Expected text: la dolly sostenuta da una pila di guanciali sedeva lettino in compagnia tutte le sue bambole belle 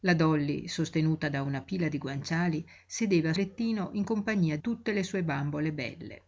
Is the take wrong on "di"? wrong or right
right